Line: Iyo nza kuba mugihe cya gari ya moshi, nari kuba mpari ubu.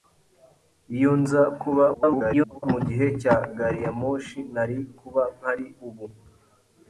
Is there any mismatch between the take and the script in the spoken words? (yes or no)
yes